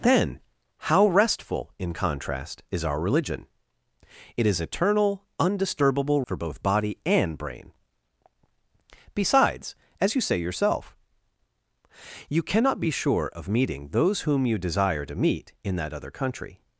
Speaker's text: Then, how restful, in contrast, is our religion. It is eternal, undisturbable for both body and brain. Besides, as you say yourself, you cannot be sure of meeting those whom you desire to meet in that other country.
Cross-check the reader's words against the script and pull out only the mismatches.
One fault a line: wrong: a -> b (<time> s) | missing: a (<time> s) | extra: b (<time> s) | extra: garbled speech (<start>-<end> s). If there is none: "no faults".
no faults